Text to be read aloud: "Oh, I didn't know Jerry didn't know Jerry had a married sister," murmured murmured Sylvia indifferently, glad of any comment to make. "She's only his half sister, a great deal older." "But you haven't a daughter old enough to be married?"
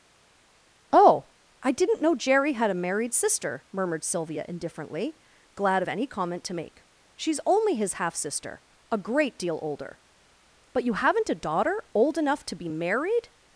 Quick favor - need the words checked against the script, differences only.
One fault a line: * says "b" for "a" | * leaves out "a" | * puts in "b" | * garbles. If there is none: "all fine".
* leaves out "didn't know Jerry"
* leaves out "murmured"